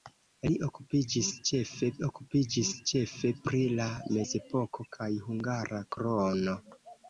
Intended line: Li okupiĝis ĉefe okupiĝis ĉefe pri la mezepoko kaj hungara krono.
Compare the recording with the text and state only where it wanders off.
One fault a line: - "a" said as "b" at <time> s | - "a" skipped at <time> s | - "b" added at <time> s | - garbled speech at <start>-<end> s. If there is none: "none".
none